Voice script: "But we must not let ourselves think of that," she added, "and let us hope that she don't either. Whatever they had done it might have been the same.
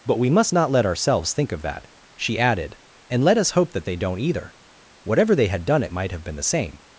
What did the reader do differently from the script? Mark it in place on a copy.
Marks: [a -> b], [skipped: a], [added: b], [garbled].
"But we must not let ourselves think of that," she added, "and let us hope that [she -> they] don't either. Whatever they had done it might have been the same.